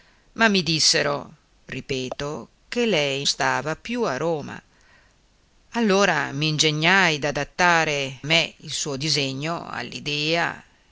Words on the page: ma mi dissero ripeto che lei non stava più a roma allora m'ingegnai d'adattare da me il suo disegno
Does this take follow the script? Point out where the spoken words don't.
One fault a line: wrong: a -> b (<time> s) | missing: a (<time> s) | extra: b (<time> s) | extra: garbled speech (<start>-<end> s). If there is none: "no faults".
missing: non (3.2 s)
missing: da (8.2 s)